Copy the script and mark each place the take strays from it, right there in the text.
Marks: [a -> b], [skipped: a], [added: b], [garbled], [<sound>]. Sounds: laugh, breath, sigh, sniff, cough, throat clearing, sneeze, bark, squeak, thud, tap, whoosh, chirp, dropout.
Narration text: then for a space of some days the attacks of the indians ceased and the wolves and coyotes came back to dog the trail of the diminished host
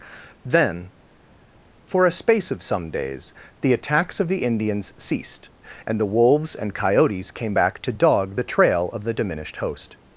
then for a space of some days the attacks of the indians ceased and the wolves and coyotes came back to dog the trail of the diminished host